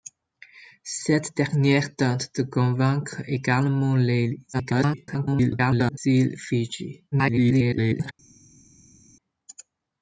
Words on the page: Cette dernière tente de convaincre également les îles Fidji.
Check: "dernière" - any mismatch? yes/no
no